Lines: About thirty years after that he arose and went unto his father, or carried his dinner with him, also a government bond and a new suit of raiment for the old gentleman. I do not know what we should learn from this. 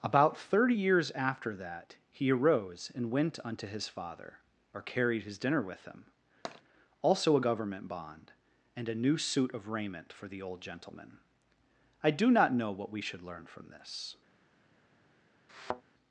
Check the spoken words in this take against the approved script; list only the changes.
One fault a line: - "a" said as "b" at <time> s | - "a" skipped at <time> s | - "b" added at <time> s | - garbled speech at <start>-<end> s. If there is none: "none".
none